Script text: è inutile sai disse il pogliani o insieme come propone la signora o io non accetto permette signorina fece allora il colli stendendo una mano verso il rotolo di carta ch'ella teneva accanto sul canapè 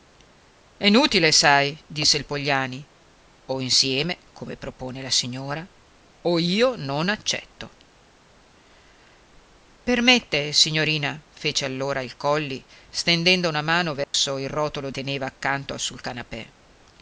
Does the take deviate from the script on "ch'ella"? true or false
true